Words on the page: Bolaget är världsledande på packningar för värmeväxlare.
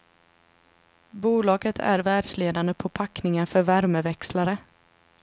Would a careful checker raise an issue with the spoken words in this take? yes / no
no